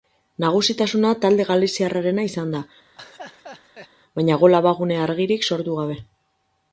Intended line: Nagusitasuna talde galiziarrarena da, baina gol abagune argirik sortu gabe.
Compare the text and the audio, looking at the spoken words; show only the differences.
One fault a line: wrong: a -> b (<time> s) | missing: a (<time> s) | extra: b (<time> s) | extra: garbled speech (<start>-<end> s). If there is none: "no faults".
extra: izan (2.3 s)